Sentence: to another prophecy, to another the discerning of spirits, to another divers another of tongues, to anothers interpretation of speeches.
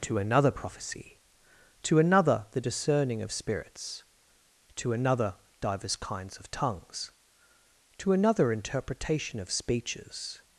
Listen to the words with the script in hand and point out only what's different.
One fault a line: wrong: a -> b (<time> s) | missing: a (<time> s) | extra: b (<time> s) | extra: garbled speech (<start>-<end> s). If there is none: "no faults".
wrong: another -> kinds (5.9 s)
wrong: anothers -> another (8.1 s)